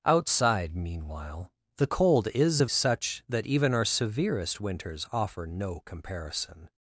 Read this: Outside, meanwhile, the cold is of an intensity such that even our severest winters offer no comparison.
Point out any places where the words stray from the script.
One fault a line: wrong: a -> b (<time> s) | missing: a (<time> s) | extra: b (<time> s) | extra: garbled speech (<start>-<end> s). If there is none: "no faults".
missing: an intensity (2.7 s)